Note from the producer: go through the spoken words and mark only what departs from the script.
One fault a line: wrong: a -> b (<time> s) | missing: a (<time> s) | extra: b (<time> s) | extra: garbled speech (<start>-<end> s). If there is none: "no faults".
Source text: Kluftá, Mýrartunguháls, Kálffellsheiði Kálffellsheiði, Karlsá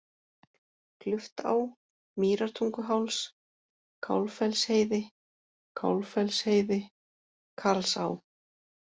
no faults